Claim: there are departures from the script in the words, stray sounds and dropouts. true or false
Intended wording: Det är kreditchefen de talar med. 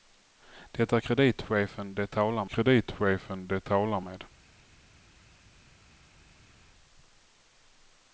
true